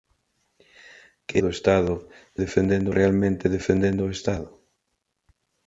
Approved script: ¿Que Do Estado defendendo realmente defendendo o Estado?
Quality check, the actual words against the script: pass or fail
pass